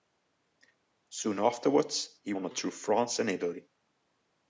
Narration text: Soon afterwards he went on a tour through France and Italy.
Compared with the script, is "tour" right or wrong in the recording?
wrong